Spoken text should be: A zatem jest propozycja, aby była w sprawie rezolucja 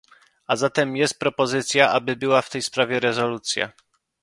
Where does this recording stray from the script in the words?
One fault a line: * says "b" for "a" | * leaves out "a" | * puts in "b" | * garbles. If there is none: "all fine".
* puts in "tej"